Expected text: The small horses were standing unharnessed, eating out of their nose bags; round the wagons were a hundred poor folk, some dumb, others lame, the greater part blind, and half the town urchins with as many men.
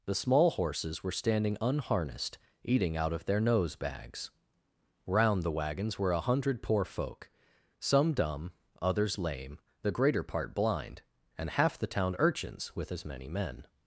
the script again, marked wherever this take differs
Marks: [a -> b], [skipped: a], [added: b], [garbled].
The small horses were standing unharnessed, eating out of their nose bags; round the wagons were a hundred poor folk, some dumb, others lame, the greater part blind, and half the town urchins with as many men.